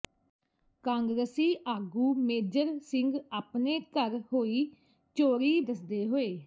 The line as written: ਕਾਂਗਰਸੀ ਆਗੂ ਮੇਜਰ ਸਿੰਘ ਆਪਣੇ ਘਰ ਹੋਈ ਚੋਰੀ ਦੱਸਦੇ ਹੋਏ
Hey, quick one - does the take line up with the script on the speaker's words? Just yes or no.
yes